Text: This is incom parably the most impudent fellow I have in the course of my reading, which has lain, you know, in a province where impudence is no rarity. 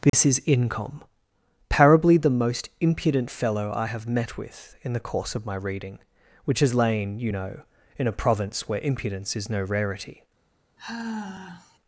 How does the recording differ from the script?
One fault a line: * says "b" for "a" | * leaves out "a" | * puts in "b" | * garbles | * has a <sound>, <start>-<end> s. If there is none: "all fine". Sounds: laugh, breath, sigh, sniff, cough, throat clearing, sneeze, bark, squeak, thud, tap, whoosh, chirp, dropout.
* has a dropout, 0.1-0.1 s
* puts in "met with"
* has a sigh, 10.8-11.8 s